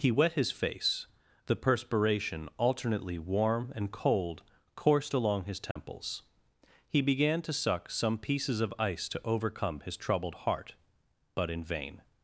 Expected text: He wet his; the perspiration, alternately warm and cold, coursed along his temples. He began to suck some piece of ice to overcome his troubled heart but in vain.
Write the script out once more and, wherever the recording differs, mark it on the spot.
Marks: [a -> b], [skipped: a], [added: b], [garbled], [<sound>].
He wet his; [added: face] the perspiration, alternately warm and cold, coursed along his temples. [dropout] He began to suck some [piece -> pieces] of ice to overcome his troubled heart but in vain.